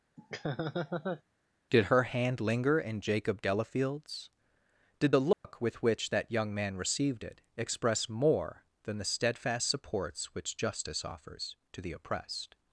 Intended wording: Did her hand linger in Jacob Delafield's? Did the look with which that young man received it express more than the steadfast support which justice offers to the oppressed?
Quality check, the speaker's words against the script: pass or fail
fail